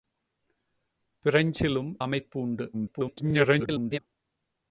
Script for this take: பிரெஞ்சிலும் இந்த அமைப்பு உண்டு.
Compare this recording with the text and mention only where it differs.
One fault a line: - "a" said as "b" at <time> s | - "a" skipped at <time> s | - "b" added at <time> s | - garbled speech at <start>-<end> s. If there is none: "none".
- "இந்த" skipped at 1.9 s
- garbled speech at 2.7-4.0 s